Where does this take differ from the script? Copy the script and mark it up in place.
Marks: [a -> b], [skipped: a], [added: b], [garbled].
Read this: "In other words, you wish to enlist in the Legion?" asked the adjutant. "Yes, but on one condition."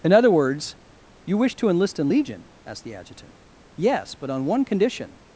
"In other words, you wish to enlist in [skipped: the] Legion?" asked the adjutant. "Yes, but on one condition."